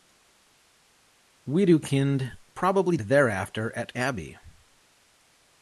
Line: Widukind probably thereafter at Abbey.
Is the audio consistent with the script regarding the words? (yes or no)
yes